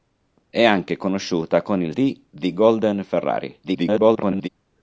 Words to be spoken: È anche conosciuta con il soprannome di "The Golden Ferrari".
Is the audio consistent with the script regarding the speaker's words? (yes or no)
no